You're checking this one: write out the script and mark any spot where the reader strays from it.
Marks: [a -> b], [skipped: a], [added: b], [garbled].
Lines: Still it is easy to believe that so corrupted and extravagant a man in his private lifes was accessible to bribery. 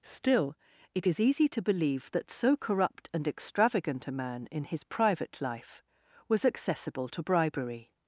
Still it is easy to believe that so [corrupted -> corrupt] and extravagant a man in his private [lifes -> life] was accessible to bribery.